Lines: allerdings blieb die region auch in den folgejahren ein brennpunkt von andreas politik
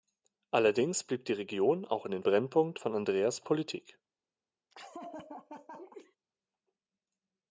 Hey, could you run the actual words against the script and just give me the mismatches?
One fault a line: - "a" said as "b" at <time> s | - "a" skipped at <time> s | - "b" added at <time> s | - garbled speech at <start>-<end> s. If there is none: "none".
- "folgejahren ein" skipped at 2.2 s